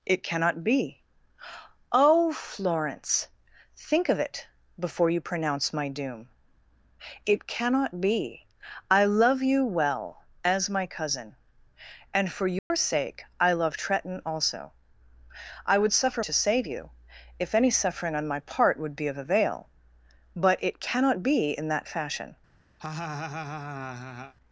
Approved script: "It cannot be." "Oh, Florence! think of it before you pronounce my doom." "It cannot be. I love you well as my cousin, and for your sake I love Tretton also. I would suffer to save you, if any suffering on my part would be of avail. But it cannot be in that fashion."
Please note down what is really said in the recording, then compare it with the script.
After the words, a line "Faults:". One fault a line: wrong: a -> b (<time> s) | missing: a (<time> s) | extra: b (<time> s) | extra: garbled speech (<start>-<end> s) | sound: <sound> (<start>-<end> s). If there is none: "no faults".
"It cannot be." "Oh, Florence! think of it before you pronounce my doom." "It cannot be. I love you well as my cousin, and for your sake I love Tretton also. I would suffer to save you, if any suffering on my part would be of avail. But it cannot be in that fashion."
Faults:
sound: dropout (12.6-12.7 s)
sound: laugh (22.8-24.3 s)